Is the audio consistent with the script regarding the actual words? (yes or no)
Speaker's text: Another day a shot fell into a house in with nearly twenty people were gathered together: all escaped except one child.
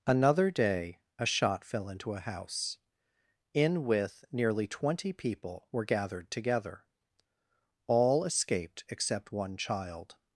yes